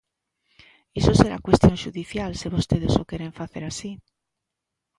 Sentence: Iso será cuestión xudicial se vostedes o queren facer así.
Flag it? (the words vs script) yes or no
no